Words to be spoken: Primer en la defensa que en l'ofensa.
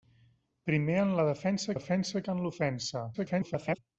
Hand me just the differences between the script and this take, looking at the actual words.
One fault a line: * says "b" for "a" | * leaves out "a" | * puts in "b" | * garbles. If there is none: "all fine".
* puts in "defensa"
* garbles